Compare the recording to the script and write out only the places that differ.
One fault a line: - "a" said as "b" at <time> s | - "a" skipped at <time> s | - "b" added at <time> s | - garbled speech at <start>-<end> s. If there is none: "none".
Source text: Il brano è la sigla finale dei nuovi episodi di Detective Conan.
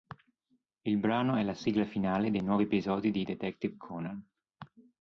none